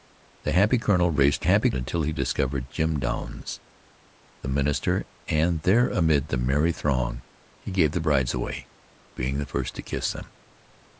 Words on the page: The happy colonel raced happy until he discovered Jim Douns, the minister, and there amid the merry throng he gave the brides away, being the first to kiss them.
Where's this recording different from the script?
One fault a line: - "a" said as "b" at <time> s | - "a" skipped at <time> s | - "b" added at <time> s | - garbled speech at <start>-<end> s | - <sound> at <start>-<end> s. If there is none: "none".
none